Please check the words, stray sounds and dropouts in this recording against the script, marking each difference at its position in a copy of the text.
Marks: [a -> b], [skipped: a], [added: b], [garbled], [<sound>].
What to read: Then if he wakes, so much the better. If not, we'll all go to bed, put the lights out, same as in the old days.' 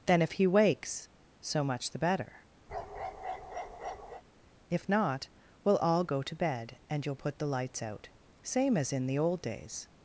Then if he wakes, so much the better. [bark] If not, we'll all go to bed, [added: and you'll] put the lights out, same as in the old days.'